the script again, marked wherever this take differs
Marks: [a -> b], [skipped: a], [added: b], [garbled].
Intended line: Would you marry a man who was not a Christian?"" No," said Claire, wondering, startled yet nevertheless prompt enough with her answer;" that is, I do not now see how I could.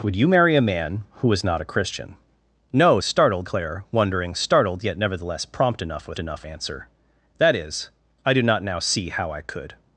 Would you marry a man who was not a Christian?"" No," [said -> startled] Claire, wondering, startled yet nevertheless prompt enough with [her -> enough] answer;" that is, I do not now see how I could.